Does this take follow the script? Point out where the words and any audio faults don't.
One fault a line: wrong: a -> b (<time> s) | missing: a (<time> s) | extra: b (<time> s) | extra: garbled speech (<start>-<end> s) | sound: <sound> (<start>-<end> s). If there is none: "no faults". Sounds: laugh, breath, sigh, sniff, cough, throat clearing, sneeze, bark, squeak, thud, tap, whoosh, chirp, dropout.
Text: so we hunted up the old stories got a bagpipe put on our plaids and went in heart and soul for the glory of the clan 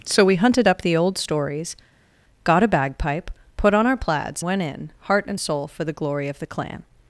missing: and (4.4 s)